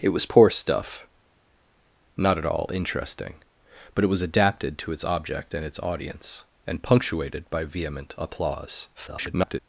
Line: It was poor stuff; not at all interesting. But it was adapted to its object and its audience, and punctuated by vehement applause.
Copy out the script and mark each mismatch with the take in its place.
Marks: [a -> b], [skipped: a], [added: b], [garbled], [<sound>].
It was poor stuff; not at all interesting. But it was adapted to its object and its audience, and punctuated by vehement applause. [garbled]